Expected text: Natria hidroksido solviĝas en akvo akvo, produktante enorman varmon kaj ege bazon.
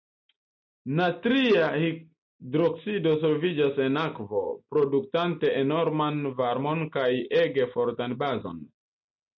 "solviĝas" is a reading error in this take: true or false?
false